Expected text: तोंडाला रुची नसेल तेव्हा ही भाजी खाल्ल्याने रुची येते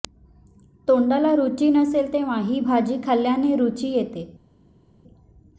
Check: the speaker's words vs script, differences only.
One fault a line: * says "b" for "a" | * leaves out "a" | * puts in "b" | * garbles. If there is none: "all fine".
all fine